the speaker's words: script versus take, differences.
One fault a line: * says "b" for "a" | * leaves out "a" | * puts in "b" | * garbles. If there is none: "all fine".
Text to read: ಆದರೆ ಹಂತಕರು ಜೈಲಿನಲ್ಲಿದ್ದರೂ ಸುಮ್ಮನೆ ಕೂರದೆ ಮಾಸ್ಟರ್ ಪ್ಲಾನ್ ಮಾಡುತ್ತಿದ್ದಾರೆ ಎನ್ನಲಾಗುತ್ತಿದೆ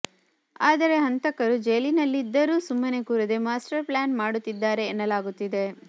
all fine